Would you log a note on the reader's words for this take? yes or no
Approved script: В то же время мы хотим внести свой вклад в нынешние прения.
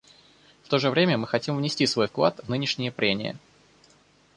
no